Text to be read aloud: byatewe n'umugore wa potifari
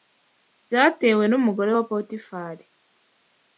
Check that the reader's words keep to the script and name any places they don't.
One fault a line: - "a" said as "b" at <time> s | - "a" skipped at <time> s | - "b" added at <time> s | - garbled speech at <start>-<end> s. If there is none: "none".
none